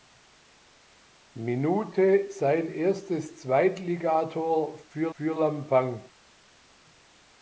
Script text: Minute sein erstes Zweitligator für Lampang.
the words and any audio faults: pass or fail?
fail